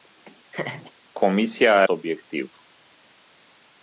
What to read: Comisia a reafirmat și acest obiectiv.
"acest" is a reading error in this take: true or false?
true